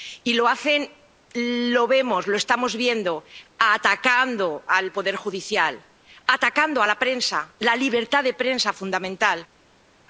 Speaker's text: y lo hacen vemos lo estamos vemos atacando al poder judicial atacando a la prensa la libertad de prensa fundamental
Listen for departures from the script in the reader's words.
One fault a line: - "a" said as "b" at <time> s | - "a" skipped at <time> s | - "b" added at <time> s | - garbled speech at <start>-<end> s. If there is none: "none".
- "lo" added at 1.3 s
- "vemos" said as "viendo" at 2.8 s